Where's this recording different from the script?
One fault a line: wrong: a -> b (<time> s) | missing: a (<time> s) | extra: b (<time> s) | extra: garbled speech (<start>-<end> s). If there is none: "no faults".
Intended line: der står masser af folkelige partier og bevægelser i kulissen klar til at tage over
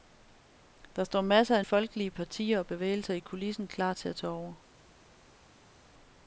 no faults